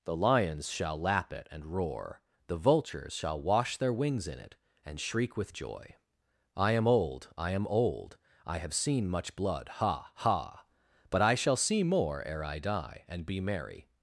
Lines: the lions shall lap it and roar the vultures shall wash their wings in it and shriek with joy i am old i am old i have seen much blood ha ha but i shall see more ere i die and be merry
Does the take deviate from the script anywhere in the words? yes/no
no